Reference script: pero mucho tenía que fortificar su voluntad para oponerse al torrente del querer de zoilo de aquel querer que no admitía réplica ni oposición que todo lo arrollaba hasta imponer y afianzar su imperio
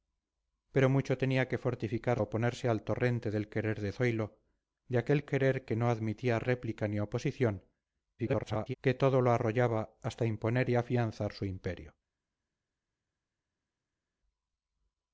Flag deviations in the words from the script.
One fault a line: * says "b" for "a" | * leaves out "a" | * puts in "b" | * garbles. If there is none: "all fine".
* leaves out "su voluntad para"
* garbles